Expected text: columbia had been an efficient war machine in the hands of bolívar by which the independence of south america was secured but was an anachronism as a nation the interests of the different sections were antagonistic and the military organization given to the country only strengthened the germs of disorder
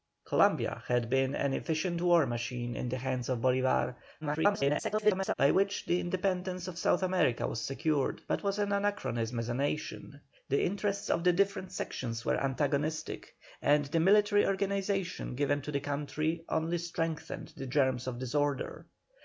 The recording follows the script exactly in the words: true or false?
false